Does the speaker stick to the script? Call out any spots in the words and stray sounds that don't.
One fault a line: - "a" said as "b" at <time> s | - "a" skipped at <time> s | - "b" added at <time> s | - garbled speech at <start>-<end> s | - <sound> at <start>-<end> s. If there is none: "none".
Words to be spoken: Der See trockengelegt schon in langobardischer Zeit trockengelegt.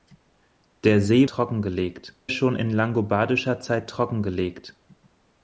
none